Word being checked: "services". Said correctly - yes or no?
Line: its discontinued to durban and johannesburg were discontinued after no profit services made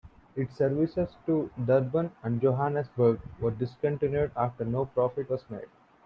no